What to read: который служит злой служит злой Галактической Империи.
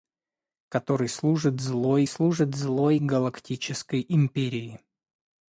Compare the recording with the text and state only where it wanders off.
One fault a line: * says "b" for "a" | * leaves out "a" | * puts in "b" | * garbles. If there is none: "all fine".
all fine